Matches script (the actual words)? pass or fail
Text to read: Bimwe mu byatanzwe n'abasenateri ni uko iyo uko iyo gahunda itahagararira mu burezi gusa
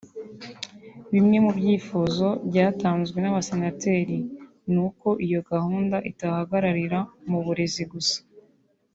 fail